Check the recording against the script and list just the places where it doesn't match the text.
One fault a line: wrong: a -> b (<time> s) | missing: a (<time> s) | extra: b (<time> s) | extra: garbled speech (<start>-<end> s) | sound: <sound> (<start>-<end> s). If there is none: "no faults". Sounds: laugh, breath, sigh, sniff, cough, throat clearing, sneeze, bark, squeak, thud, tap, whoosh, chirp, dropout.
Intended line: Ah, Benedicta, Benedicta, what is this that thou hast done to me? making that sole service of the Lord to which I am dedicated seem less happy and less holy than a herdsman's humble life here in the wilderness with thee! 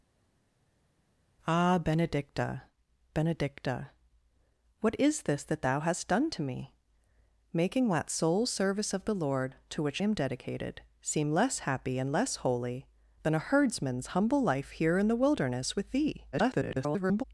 missing: I (10.0 s)
extra: garbled speech (16.3-17.2 s)